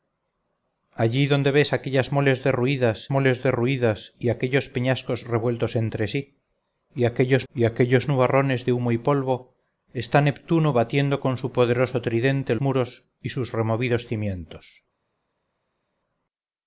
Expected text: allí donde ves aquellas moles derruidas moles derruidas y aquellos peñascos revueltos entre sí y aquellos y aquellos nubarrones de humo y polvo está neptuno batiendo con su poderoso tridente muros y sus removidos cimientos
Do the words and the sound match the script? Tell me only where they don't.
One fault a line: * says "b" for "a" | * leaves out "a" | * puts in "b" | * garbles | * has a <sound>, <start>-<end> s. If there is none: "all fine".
all fine